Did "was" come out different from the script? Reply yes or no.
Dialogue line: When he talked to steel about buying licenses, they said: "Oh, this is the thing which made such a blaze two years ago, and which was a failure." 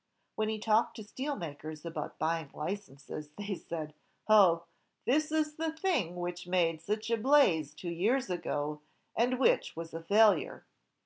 no